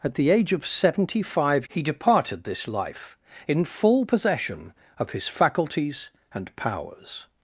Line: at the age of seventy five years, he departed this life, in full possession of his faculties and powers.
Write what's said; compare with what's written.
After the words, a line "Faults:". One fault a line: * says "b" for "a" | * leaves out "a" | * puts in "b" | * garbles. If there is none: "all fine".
at the age of seventy five he departed this life, in full possession of his faculties and powers.
Faults:
* leaves out "years"